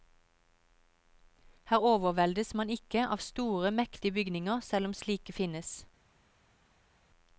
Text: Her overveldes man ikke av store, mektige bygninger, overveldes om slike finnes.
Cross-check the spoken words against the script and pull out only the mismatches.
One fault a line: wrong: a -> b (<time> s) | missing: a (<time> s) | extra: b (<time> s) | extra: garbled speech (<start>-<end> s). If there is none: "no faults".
wrong: overveldes -> selv (4.6 s)